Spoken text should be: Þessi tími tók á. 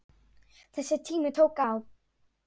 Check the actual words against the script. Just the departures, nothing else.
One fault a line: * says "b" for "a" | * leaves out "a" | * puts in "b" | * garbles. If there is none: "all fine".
all fine